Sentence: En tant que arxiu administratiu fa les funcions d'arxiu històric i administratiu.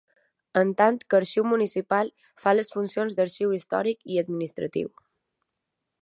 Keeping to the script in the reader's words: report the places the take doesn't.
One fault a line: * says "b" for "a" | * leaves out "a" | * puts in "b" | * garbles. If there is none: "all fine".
* says "municipal" for "administratiu"